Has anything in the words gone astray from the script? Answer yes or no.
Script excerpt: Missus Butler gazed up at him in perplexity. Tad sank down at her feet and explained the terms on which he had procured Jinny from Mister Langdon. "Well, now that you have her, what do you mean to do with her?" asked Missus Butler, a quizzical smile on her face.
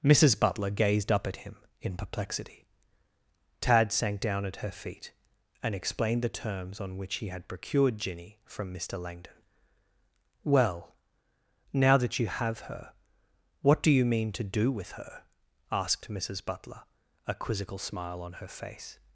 no